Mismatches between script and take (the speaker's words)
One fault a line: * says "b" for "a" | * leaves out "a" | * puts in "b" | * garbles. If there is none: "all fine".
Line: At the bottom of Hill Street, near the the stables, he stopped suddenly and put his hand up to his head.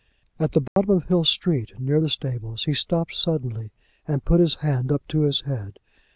* leaves out "the"